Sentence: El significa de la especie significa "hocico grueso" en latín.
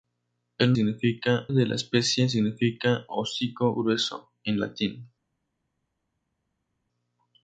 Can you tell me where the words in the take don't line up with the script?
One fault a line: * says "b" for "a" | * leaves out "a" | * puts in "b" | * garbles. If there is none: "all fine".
all fine